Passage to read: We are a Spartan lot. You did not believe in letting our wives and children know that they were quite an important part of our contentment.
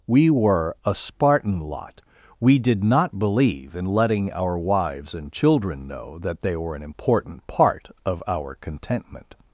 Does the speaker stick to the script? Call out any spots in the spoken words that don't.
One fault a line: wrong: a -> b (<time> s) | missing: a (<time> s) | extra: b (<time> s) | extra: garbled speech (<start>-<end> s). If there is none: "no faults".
wrong: are -> were (0.3 s)
wrong: You -> We (2.4 s)
missing: quite (6.7 s)